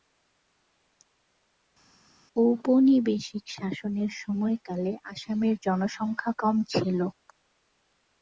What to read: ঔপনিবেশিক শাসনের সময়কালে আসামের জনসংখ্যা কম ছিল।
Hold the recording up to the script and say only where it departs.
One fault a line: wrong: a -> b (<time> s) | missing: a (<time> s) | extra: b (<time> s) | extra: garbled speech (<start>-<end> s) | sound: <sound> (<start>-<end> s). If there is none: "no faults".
no faults